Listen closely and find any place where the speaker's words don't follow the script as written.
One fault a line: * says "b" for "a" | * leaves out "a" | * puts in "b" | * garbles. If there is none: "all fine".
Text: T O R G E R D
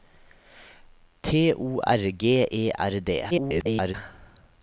* garbles